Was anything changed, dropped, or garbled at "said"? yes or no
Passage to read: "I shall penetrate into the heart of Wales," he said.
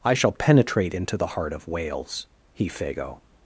yes